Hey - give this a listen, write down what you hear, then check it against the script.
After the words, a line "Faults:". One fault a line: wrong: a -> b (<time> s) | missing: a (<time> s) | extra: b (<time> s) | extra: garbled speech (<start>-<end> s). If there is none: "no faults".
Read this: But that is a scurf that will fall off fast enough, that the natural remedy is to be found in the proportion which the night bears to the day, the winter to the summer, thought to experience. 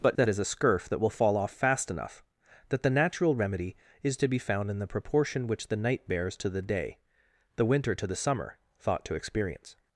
But that is a scurf that will fall off fast enough, that the natural remedy is to be found in the proportion which the night bears to the day, the winter to the summer, thought to experience.
Faults:
no faults